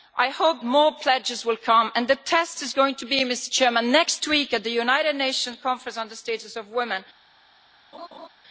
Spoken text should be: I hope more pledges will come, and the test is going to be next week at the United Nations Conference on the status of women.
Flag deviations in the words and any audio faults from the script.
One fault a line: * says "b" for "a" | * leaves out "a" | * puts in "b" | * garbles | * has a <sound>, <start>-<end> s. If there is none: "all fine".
* has a laugh, 7.9-8.3 s